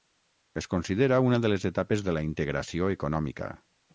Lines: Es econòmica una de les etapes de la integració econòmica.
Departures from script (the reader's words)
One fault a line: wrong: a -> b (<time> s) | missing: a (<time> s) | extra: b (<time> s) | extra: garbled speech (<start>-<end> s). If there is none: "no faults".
wrong: econòmica -> considera (0.7 s)